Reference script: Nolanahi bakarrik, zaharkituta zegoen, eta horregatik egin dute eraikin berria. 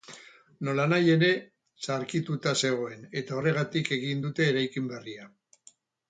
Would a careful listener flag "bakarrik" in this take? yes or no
yes